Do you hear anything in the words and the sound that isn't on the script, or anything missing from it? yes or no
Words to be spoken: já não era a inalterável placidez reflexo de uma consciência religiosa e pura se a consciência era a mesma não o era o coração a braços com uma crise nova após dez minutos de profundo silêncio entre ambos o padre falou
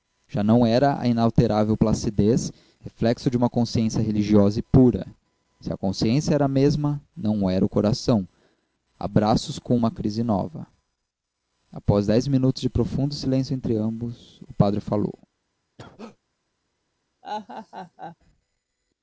yes